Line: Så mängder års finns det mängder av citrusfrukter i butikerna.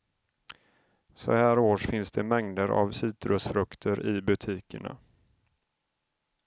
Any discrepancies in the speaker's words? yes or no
yes